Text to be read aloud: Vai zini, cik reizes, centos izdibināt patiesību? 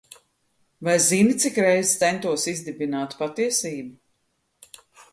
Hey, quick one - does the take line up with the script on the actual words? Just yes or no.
yes